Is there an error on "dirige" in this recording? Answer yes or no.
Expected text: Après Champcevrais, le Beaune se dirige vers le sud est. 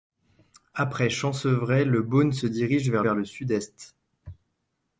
no